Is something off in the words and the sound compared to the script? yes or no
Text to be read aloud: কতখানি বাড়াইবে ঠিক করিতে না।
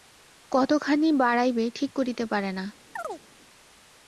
yes